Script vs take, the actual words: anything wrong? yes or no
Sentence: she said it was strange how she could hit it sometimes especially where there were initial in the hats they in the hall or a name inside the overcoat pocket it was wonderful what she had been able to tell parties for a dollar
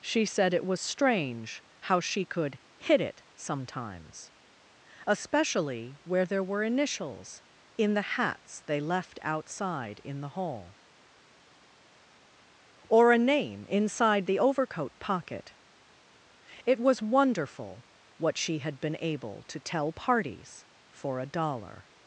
yes